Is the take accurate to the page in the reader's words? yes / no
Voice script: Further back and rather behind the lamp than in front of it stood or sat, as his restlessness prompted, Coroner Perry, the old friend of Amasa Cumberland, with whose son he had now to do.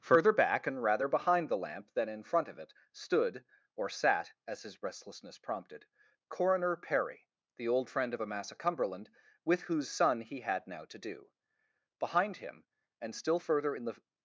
no